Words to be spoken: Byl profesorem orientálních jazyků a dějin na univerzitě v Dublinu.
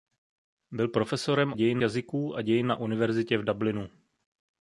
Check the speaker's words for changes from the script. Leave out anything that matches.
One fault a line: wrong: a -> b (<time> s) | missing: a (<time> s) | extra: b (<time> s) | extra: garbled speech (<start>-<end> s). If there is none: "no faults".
wrong: orientálních -> dějin (1.5 s)